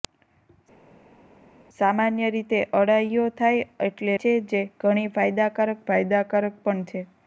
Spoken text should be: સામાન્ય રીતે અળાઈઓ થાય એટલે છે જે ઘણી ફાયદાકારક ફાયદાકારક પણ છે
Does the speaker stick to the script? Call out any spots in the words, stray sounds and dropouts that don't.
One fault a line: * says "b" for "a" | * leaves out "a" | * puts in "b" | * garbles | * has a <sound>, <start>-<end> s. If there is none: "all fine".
all fine